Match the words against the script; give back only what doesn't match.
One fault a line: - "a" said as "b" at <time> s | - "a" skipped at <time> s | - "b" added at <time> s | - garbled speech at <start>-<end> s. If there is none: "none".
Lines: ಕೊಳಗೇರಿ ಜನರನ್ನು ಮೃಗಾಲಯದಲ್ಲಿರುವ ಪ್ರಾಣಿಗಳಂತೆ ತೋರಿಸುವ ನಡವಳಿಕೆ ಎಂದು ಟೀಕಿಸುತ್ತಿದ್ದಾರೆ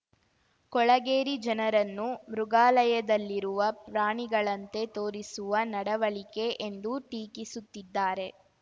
none